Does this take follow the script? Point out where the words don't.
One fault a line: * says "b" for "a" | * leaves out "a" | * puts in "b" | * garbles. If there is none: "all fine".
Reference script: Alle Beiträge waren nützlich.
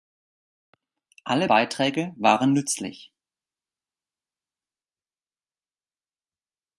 all fine